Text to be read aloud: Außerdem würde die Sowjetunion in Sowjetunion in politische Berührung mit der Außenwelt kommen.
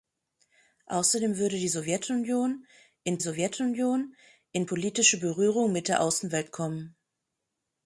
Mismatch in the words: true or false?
false